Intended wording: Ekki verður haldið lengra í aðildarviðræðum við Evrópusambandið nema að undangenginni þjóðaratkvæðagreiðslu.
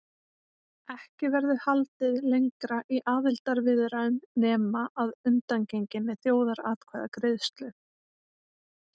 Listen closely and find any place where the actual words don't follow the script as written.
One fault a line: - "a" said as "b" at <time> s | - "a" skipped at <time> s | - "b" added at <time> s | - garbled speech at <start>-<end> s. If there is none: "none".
- "við Evrópusambandið" skipped at 4.2 s